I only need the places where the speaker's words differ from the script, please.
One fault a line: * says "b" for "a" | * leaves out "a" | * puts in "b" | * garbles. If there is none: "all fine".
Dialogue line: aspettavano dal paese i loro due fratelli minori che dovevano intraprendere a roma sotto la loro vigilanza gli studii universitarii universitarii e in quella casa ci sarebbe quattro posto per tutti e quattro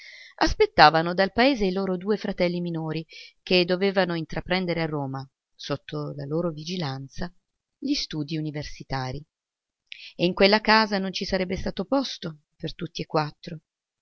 * leaves out "universitarii"
* puts in "non"
* says "stato" for "quattro"